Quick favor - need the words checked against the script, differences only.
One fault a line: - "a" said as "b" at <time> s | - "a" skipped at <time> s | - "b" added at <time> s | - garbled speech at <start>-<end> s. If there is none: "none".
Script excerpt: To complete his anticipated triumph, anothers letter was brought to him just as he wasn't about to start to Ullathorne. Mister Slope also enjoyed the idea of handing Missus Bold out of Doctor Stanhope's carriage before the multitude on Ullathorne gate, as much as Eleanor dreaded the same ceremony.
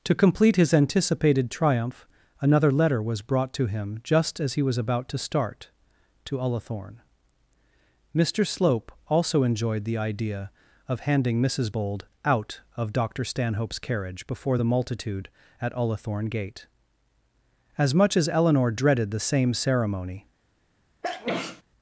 - "anothers" said as "another" at 2.4 s
- "wasn't" said as "was" at 4.6 s
- "on" said as "at" at 15.6 s